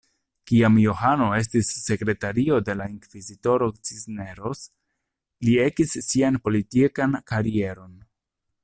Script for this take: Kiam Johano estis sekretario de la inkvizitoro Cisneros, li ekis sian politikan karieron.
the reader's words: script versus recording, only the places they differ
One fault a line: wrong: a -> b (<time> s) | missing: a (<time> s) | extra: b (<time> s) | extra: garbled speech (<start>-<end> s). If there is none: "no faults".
no faults